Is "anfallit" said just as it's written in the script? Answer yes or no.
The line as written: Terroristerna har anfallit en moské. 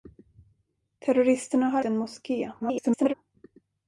no